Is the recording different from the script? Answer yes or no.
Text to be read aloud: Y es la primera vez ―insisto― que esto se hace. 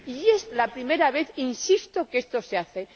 no